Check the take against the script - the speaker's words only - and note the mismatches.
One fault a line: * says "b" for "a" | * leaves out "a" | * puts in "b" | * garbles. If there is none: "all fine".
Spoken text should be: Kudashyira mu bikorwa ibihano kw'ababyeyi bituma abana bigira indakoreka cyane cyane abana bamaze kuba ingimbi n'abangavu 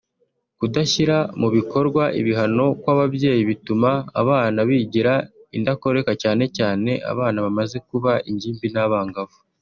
all fine